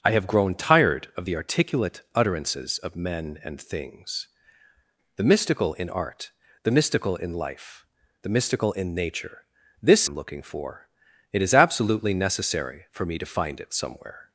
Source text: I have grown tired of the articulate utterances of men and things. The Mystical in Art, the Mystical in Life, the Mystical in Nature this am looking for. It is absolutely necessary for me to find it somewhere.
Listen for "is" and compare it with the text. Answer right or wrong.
right